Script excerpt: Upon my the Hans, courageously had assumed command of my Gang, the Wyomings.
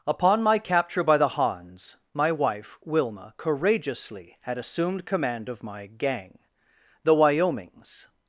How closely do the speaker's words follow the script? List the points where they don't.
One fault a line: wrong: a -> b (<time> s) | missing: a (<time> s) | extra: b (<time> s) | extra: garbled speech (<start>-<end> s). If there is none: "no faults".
extra: capture by (0.6 s)
extra: my wife Wilma (2.1 s)